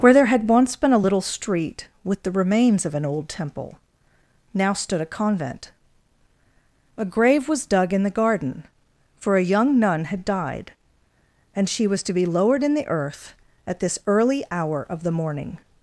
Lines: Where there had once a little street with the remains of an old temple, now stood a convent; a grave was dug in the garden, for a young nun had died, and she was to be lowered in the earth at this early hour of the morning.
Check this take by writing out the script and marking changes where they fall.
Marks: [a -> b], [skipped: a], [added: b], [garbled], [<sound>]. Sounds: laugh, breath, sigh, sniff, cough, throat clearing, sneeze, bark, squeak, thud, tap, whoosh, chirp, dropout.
Where there had once [added: been] a little street with the remains of an old temple, now stood a convent; a grave was dug in the garden, for a young nun had died, and she was to be lowered in the earth at this early hour of the morning.